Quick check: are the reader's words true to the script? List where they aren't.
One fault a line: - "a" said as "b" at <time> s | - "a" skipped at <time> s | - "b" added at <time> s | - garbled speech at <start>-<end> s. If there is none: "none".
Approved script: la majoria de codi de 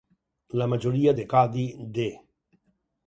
none